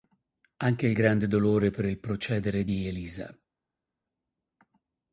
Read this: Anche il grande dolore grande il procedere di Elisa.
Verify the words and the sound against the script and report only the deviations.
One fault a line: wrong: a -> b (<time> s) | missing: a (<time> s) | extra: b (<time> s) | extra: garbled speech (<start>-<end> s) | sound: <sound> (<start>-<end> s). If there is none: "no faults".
wrong: grande -> per (1.7 s)